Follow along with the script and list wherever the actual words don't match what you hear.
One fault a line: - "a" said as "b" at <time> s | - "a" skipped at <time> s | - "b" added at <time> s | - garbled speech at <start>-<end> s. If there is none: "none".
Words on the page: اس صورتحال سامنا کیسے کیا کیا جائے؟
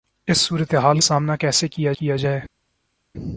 none